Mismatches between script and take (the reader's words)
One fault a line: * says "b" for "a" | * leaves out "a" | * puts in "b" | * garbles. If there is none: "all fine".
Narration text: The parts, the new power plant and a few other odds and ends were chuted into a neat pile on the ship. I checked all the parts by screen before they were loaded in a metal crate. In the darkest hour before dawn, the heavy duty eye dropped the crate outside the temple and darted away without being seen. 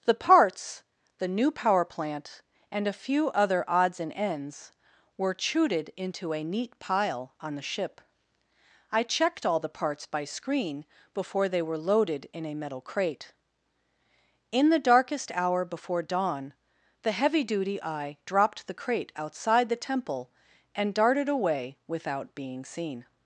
all fine